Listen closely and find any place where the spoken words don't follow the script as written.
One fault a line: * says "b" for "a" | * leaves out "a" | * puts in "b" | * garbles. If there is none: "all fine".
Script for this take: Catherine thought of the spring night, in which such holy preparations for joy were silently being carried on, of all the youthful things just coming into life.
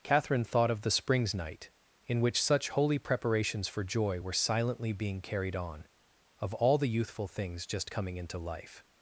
* says "springs" for "spring"